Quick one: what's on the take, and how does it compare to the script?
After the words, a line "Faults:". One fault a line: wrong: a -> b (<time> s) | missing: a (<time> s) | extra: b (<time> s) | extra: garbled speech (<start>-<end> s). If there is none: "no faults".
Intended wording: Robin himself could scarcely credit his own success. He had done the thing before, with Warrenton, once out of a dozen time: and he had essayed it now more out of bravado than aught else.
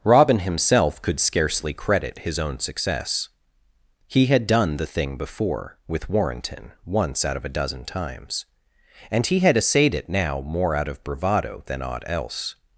Robin himself could scarcely credit his own success. He had done the thing before, with Warrenton, once out of a dozen times: and he had essayed it now more out of bravado than aught else.
Faults:
wrong: time -> times (7.8 s)